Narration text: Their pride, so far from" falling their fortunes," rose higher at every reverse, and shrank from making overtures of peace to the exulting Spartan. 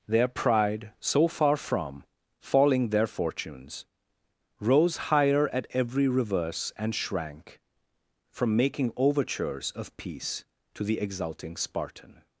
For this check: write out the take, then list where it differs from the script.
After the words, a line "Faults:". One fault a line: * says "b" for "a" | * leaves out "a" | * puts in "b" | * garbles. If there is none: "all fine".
Their pride, so far from" falling their fortunes," rose higher at every reverse, and shrank from making overtures of peace to the exulting Spartan.
Faults:
all fine